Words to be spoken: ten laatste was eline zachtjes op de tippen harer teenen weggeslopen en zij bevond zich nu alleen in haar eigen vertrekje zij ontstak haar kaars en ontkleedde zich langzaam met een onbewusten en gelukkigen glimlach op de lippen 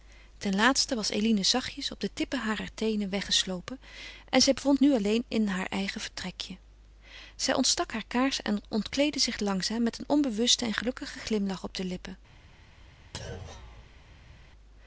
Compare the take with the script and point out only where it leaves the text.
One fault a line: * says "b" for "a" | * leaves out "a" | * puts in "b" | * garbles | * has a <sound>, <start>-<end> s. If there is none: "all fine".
* leaves out "zich"
* has a thud, 13.1-14.5 s